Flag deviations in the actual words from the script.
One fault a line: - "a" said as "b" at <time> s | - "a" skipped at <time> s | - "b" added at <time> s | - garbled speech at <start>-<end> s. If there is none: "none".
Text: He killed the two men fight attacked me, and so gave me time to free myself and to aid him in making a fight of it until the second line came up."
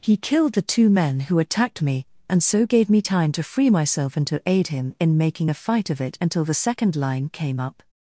- "fight" said as "who" at 1.2 s